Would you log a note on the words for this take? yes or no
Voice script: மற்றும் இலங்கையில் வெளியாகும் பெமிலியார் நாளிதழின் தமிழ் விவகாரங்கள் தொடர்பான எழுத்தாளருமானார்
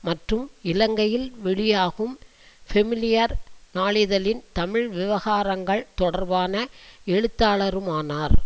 no